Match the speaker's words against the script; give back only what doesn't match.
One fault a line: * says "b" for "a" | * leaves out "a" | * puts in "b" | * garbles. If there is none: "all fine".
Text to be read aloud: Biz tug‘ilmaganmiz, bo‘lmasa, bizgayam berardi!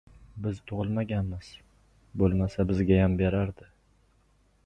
all fine